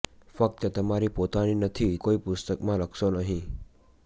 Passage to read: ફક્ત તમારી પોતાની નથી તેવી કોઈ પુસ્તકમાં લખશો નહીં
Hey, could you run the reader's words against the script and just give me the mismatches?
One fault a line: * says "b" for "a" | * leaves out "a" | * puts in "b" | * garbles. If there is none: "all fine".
* leaves out "તેવી"